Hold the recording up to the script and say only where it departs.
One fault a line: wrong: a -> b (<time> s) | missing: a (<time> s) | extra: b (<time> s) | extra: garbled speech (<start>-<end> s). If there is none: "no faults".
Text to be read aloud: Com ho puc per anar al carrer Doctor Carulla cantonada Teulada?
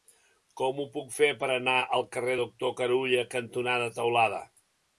extra: fer (1.2 s)